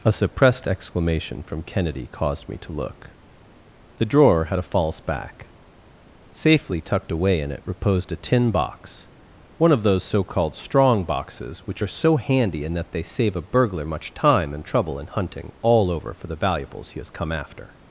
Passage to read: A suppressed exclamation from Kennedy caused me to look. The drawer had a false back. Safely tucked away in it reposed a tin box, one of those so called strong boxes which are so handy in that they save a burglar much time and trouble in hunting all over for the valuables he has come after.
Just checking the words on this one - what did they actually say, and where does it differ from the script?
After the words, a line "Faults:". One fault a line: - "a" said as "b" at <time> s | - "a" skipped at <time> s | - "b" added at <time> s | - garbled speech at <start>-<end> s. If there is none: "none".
A suppressed exclamation from Kennedy caused me to look. The drawer had a false back. Safely tucked away in it reposed a tin box, one of those so called strong boxes which are so handy in that they save a burglar much time and trouble in hunting all over for the valuables he has come after.
Faults:
none